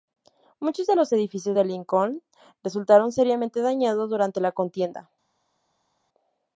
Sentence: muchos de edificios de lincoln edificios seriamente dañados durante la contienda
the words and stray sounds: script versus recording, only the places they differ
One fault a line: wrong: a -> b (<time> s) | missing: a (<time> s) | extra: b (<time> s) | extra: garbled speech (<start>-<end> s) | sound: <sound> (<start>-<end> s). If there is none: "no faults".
extra: los (0.9 s)
wrong: edificios -> resultaron (2.6 s)